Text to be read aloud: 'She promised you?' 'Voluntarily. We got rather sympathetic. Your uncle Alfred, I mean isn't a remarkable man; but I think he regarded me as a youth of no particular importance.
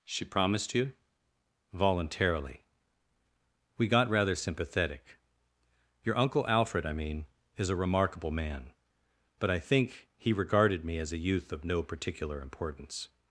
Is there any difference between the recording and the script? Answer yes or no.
yes